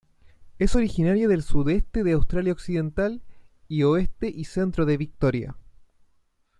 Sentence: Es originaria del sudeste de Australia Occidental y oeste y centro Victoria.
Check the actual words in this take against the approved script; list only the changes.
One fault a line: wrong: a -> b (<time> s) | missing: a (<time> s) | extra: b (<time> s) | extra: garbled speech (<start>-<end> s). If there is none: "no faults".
extra: de (4.8 s)